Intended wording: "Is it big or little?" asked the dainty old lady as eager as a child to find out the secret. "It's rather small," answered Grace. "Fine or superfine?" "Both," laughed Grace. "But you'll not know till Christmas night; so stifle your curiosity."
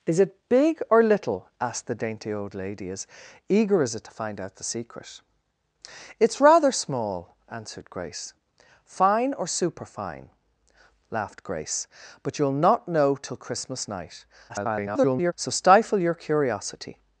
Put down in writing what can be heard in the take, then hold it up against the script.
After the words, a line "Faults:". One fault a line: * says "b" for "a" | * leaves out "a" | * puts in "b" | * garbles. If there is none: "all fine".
"Is it big or little?" asked the dainty old lady as eager as a to find out the secret. "It's rather small," answered Grace. "Fine or superfine," "Laughed Grace. "But you'll not know till Christmas night; [garbled] so stifle your curiosity."
Faults:
* leaves out "child"
* leaves out "Both"
* garbles